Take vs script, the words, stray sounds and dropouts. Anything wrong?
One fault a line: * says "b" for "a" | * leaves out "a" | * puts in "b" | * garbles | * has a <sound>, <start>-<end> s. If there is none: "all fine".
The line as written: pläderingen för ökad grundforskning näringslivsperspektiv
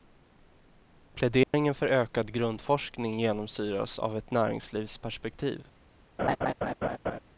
* has a dropout, 1.4-1.5 s
* puts in "genomsyras av ett"
* has a laugh, 6.2-7.2 s